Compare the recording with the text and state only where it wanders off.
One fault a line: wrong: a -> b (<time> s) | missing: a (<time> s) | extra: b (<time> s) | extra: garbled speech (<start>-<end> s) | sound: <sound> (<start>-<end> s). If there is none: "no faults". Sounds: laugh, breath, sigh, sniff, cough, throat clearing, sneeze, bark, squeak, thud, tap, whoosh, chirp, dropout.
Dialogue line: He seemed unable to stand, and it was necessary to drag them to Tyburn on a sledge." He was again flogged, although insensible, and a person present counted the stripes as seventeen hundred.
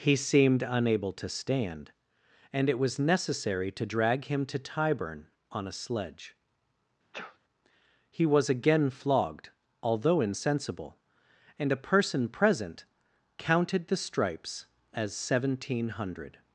wrong: them -> him (4.2 s)
sound: sneeze (7.1-7.4 s)